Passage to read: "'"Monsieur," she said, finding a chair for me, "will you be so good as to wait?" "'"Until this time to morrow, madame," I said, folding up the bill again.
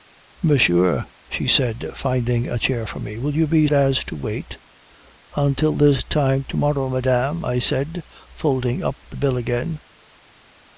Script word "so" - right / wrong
wrong